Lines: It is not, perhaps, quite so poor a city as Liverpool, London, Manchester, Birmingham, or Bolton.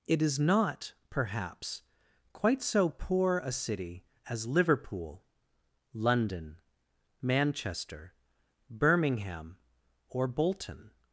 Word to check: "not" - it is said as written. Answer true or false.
true